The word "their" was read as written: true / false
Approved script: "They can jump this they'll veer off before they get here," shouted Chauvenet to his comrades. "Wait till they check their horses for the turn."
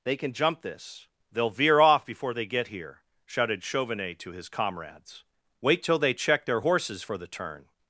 true